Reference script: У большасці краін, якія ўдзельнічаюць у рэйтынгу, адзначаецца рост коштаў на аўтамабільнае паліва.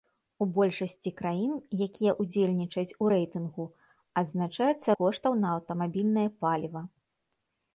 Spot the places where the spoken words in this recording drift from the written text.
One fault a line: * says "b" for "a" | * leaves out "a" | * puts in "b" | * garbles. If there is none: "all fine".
* leaves out "рост"